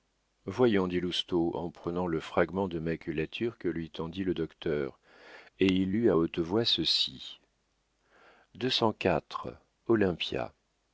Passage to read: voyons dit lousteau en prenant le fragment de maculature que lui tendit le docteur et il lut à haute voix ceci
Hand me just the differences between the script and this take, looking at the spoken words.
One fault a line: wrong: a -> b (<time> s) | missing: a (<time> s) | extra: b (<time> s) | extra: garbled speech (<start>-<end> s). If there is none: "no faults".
no faults